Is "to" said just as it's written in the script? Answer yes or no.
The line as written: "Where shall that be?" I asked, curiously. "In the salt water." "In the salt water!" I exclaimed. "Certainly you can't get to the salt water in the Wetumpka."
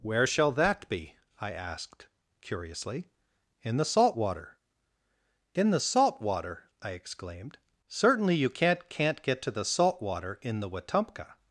yes